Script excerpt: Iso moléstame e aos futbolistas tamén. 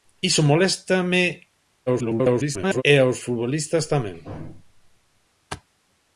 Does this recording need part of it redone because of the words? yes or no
yes